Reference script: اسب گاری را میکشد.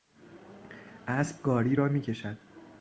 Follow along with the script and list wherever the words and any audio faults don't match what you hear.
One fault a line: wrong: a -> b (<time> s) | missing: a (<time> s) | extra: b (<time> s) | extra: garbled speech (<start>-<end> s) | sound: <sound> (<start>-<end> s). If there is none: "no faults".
no faults